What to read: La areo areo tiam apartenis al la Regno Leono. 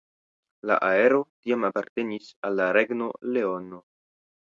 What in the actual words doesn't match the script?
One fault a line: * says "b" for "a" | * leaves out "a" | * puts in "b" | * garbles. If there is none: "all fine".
* leaves out "areo"